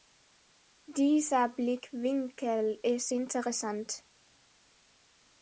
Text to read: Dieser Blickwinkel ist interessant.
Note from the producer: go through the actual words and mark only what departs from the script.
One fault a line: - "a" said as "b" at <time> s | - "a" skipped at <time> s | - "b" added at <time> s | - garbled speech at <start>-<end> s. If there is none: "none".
none